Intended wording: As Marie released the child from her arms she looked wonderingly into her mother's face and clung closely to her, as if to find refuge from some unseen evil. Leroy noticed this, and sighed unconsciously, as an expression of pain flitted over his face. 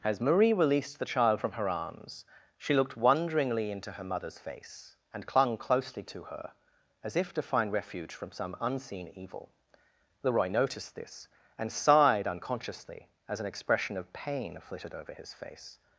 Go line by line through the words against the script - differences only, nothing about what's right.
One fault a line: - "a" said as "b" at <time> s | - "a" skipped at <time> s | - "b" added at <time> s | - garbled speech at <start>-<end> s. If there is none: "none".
none